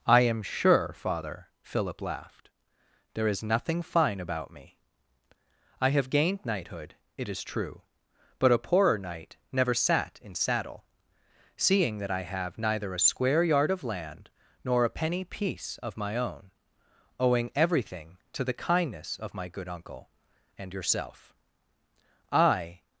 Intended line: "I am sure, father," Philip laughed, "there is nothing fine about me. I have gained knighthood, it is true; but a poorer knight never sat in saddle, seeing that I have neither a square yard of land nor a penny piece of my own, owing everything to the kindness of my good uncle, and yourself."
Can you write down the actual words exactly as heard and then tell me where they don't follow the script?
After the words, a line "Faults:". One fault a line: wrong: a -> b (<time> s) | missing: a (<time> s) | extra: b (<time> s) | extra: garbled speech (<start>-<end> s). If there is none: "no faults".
"I am sure, father," Philip laughed, "there is nothing fine about me. I have gained knighthood, it is true; but a poorer knight never sat in saddle, seeing that I have neither a square yard of land nor a penny piece of my own, owing everything to the kindness of my good uncle, and yourself." "I
Faults:
extra: I (22.3 s)